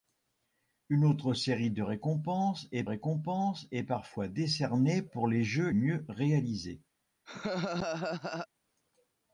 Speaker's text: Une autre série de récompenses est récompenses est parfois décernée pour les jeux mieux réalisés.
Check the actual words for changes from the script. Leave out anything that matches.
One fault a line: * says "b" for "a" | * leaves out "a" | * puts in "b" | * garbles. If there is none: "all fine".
all fine